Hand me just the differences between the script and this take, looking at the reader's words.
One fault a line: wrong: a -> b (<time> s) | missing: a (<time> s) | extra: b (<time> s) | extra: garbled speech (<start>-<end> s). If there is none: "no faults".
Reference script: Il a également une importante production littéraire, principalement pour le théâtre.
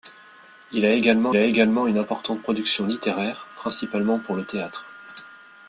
extra: a également (1.3 s)